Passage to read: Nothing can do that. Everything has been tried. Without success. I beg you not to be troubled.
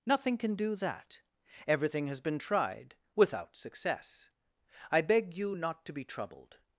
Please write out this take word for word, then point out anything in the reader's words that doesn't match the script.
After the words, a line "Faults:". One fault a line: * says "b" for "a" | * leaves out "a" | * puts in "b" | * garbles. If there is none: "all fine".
Nothing can do that. Everything has been tried. Without success. I beg you not to be troubled.
Faults:
all fine